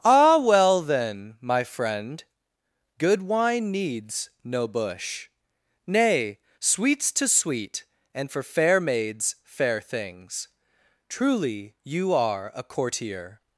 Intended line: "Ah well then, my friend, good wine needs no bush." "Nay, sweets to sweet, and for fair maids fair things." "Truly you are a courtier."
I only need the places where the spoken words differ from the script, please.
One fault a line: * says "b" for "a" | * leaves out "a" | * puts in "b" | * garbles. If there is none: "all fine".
all fine